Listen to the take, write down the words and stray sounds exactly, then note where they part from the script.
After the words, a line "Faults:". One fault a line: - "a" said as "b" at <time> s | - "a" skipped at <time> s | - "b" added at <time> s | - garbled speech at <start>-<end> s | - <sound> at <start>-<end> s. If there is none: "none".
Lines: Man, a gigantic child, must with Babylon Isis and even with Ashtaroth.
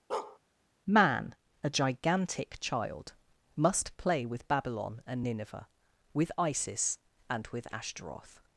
Man, a gigantic child, must play with Babylon and Nineveh, with Isis and with Ashtaroth.
Faults:
- bark at 0.1-0.4 s
- "play" added at 4.0 s
- "and Nineveh with" added at 5.1 s
- "even" skipped at 7.5 s